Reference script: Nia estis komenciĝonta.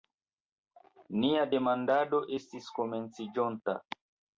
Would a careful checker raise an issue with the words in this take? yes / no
yes